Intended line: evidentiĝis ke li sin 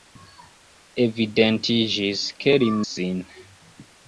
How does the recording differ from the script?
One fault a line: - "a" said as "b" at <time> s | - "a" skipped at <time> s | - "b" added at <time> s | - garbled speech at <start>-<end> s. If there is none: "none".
none